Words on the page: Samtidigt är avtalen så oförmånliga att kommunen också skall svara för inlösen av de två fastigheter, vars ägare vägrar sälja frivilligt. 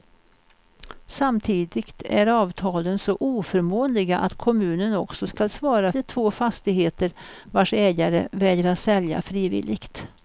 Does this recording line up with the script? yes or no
no